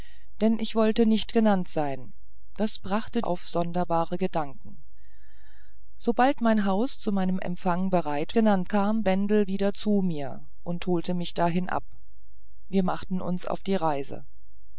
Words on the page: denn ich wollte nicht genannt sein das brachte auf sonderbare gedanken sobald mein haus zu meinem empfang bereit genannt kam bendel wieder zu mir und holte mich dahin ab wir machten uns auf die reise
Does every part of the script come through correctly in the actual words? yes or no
yes